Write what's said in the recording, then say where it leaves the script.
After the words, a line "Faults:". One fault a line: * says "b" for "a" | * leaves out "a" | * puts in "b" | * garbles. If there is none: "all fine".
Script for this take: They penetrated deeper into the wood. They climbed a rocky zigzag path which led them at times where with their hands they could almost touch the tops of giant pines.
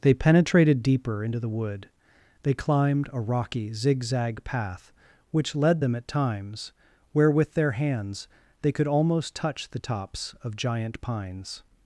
They penetrated deeper into the wood. They climbed a rocky zigzag path which led them at times where with their hands they could almost touch the tops of giant pines.
Faults:
all fine